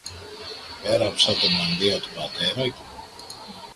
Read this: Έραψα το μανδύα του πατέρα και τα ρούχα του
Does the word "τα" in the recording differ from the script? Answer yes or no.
yes